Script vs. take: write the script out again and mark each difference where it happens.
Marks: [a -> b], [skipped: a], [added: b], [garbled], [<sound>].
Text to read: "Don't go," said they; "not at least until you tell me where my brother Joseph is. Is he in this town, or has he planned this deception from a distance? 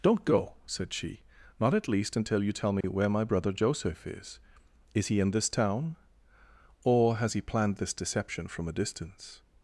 "Don't go," said [they; -> she] "not at least until you tell me [dropout] where my brother Joseph is. Is he in this town, or has he planned this deception from a distance?